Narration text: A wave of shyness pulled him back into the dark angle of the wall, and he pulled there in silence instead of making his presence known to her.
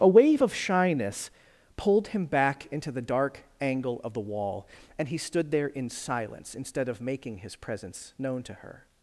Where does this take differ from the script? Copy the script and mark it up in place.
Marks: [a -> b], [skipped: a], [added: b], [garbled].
A wave of shyness pulled him back into the dark angle of the wall, and he [pulled -> stood] there in silence instead of making his presence known to her.